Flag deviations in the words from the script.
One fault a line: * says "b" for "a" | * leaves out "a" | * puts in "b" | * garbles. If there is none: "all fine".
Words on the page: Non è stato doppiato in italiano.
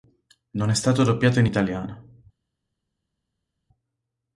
all fine